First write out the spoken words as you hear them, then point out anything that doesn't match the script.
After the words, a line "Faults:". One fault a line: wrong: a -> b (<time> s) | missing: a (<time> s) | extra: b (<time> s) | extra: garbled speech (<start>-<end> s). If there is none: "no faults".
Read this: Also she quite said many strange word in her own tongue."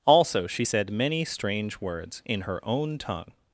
Also she said many strange words in her own tongue."
Faults:
missing: quite (0.7 s)
wrong: word -> words (1.8 s)